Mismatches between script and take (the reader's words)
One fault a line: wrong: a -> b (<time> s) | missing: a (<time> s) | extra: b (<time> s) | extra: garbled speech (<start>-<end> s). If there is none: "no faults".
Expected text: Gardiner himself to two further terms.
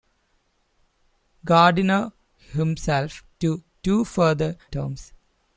no faults